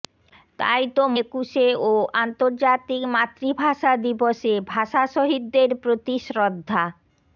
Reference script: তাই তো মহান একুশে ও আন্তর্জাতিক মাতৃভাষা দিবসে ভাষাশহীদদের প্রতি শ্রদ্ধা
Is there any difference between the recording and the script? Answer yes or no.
yes